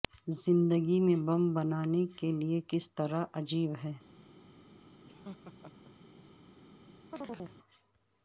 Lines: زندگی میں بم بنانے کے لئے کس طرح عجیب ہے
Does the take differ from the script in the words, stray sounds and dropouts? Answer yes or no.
yes